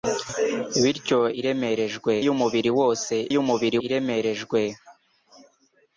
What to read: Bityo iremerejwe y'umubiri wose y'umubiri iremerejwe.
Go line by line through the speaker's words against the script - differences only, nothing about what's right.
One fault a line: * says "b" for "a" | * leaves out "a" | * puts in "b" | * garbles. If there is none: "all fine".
all fine